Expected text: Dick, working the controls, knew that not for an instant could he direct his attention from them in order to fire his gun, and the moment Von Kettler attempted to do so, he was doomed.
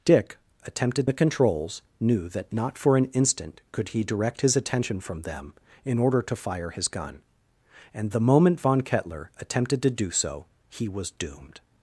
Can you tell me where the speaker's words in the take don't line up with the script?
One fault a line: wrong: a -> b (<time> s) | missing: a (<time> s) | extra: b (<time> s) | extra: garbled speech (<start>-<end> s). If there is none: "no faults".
wrong: working -> attempted (0.6 s)